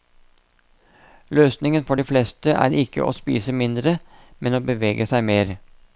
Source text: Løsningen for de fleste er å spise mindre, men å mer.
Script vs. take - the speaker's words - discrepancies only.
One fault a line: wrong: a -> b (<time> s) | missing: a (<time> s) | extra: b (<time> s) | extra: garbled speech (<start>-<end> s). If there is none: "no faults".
extra: ikke (2.8 s)
extra: bevege seg (4.7 s)